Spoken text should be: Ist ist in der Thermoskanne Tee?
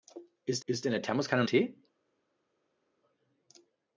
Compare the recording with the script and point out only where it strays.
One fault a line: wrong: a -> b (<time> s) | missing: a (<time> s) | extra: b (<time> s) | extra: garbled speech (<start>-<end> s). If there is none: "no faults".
no faults